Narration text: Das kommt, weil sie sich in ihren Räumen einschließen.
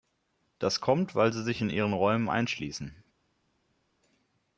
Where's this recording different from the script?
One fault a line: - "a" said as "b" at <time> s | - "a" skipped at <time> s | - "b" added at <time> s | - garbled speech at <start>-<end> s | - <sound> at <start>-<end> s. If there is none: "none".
none